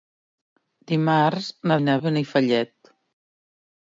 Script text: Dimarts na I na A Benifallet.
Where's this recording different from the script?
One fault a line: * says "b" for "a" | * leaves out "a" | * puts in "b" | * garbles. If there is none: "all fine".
all fine